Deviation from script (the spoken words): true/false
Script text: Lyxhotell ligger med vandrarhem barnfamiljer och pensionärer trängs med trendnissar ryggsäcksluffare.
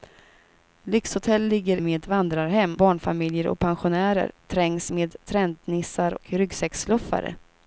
false